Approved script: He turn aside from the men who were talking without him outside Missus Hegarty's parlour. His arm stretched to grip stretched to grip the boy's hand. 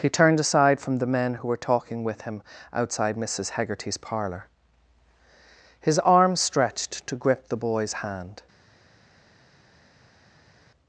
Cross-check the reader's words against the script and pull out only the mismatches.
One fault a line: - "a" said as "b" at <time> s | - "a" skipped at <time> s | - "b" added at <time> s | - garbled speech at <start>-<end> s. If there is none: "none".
- "turn" said as "turned" at 0.1 s
- "without" said as "with" at 2.0 s
- "stretched to grip" skipped at 7.5 s